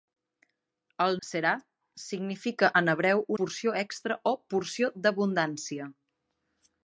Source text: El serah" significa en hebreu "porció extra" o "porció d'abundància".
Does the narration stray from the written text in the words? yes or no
no